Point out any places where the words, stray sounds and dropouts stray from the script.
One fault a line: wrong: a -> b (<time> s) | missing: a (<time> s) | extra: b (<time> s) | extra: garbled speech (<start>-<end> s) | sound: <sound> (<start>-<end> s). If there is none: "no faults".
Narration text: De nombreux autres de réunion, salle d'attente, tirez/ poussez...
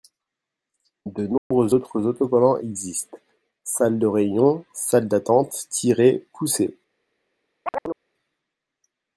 sound: dropout (1.4-1.5 s)
extra: autocollants existent salle (2.0 s)
sound: chirp (7.7-8.0 s)